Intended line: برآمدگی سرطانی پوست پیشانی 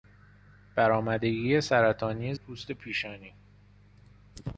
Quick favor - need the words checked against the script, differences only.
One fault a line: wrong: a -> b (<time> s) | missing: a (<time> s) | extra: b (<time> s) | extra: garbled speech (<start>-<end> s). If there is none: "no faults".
no faults